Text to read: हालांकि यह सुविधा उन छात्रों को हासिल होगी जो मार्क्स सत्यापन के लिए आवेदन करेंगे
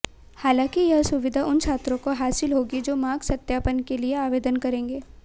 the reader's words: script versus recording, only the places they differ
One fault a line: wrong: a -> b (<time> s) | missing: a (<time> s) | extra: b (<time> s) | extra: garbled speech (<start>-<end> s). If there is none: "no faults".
no faults